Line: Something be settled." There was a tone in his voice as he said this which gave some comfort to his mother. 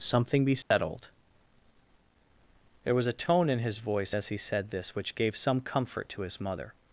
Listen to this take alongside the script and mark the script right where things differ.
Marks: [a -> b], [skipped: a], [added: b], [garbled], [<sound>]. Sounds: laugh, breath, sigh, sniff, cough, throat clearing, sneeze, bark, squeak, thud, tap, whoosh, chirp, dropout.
Something be settled." [dropout] There was a tone in his voice as he said this which gave some comfort to his mother.